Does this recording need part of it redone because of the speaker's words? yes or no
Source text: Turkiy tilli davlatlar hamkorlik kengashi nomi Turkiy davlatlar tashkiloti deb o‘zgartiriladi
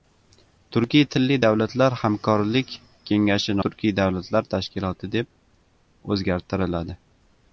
yes